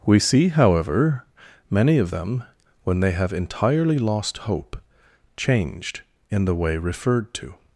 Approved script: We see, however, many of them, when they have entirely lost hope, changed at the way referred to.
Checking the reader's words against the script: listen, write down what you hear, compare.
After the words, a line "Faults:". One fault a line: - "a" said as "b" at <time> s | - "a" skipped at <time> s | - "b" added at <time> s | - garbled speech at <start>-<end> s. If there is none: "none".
We see, however, many of them, when they have entirely lost hope, changed in the way referred to.
Faults:
- "at" said as "in" at 6.3 s